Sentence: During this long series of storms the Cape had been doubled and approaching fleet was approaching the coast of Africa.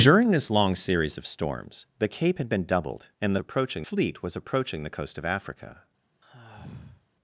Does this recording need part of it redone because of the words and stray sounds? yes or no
yes